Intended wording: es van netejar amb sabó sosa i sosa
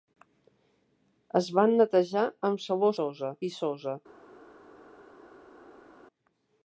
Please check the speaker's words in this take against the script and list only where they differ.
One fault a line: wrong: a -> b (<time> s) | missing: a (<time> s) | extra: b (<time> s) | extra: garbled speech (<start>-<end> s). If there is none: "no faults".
no faults